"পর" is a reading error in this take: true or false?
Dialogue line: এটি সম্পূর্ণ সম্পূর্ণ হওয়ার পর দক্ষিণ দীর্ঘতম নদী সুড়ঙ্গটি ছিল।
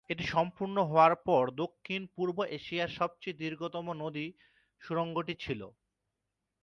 false